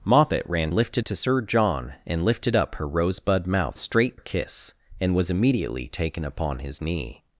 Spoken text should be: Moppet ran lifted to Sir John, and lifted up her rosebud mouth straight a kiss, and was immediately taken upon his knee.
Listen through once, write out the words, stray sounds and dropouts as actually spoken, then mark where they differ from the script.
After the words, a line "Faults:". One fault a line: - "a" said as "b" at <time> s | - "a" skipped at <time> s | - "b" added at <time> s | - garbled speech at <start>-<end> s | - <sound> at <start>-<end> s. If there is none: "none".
Moppet ran lifted to Sir John, and lifted up her rosebud mouth straight a kiss, and was immediately taken upon his knee.
Faults:
none